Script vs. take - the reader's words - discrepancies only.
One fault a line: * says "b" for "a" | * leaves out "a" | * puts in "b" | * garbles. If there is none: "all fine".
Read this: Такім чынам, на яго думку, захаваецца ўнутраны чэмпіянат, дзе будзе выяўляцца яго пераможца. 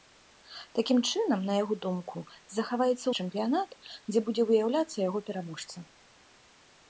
* leaves out "ўнутраны"